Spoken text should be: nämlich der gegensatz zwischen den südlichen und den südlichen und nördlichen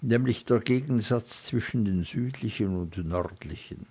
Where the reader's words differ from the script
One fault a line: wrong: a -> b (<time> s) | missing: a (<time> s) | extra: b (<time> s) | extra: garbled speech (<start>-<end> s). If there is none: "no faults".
missing: den südlichen und (3.0 s)